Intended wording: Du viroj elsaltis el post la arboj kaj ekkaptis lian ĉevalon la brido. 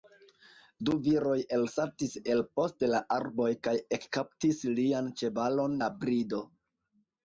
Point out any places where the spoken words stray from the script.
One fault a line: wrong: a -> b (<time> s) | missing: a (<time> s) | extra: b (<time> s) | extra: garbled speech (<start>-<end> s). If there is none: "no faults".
no faults